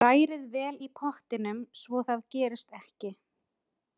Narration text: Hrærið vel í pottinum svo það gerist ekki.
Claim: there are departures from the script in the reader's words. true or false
false